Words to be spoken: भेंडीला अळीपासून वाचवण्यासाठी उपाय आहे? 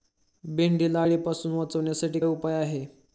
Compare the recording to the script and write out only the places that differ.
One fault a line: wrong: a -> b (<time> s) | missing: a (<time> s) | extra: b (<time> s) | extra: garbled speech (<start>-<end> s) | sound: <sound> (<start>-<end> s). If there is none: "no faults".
no faults